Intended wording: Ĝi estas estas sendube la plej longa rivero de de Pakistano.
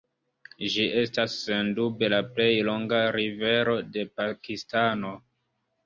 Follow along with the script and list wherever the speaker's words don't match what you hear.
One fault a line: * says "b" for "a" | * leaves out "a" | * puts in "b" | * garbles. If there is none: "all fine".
* leaves out "estas"
* leaves out "de"